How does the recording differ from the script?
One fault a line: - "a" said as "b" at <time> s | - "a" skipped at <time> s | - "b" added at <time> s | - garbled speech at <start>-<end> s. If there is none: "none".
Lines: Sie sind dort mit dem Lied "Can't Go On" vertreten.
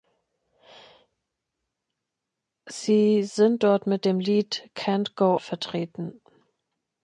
- "On" skipped at 5.4 s